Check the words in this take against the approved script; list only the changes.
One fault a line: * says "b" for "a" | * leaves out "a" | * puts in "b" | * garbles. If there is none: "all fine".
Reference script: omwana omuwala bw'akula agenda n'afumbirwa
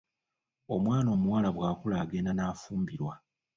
all fine